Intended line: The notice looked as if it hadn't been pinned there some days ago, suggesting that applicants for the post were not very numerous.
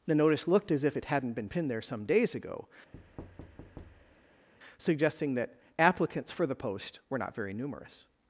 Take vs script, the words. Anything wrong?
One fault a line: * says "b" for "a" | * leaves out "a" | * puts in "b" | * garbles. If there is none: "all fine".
all fine